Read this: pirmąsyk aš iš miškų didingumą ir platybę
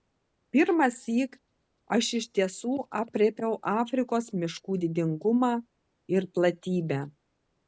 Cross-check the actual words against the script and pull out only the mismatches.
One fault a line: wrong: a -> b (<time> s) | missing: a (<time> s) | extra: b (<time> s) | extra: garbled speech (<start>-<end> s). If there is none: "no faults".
extra: tiesų aprėpiau afrikos (2.4 s)